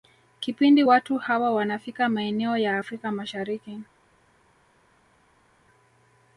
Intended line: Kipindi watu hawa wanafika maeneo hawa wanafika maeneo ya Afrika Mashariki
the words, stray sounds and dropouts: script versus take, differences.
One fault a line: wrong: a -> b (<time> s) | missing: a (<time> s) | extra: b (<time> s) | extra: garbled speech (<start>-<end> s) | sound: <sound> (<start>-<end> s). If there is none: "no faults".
missing: hawa wanafika maeneo (2.6 s)